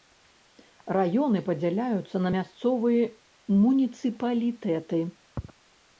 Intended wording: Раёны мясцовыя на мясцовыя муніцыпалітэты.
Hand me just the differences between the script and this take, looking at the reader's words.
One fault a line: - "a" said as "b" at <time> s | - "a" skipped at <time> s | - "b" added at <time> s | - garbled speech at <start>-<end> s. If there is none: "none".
- "мясцовыя" said as "падзяляюцца" at 1.5 s